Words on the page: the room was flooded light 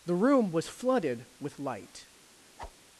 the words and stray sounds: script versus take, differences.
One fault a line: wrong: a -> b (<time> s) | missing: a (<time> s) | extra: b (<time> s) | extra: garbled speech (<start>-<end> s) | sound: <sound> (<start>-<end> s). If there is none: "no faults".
extra: with (1.4 s)
sound: whoosh (2.6-2.8 s)